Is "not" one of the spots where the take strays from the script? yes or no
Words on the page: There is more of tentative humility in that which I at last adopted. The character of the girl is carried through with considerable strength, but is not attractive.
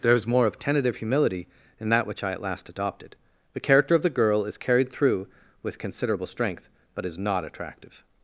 no